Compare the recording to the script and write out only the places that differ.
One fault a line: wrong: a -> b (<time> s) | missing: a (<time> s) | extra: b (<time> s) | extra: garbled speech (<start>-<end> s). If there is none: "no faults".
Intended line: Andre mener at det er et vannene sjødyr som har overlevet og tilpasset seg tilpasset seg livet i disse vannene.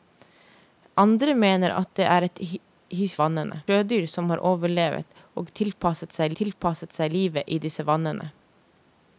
no faults